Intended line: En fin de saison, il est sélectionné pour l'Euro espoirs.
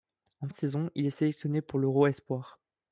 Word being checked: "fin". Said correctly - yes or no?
no